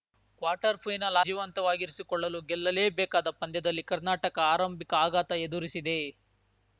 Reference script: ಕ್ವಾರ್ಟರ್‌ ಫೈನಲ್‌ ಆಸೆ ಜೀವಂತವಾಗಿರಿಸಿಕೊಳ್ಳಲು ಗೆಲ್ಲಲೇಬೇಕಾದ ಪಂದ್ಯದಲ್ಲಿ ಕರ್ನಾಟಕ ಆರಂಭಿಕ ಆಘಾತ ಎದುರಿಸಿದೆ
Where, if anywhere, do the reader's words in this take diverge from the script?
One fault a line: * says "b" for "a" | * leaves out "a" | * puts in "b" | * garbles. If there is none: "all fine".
* leaves out "ಆಸೆ"